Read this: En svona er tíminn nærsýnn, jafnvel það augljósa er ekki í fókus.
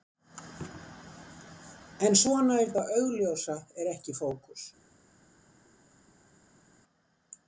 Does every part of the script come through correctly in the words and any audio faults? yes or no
no